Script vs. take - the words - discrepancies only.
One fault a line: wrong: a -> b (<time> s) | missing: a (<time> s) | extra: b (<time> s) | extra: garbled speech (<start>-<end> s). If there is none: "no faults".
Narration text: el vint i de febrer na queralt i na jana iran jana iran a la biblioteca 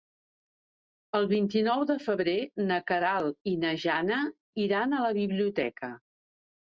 extra: nou (1.7 s)
missing: jana iran (5.0 s)